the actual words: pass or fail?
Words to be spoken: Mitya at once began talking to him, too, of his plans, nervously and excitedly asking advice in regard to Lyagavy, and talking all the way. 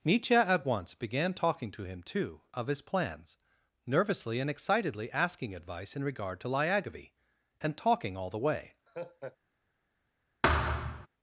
pass